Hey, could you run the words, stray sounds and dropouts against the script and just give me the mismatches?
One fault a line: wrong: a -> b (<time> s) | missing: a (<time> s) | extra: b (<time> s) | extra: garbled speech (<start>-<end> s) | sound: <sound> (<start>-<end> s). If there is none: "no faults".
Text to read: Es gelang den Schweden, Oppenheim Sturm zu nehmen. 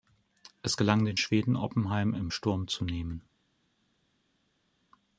extra: im (2.1 s)